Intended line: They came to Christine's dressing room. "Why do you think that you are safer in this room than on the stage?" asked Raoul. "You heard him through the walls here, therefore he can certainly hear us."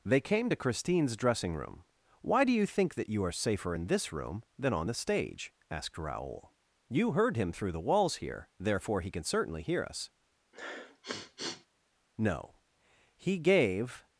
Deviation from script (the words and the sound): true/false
true